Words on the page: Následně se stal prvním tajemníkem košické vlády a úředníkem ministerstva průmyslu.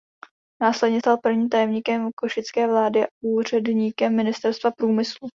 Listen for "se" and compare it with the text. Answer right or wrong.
wrong